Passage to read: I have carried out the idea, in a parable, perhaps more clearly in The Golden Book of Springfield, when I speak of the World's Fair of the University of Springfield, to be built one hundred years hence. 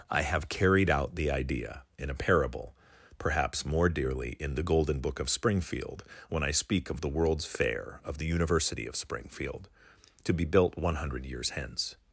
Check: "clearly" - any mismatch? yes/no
yes